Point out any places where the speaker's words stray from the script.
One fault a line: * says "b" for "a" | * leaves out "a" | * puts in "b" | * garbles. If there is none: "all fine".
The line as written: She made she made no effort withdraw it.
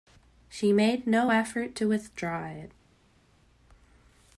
* leaves out "she made"
* puts in "to"